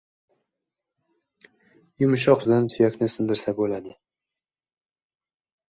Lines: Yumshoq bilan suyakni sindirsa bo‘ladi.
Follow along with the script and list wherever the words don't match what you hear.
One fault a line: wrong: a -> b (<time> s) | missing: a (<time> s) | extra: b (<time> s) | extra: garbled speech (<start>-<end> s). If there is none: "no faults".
no faults